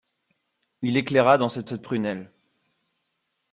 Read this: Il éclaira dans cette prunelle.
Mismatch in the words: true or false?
true